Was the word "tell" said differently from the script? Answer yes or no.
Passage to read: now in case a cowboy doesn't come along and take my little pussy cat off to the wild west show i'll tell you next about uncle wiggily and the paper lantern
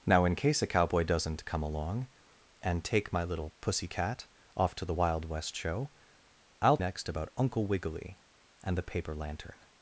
yes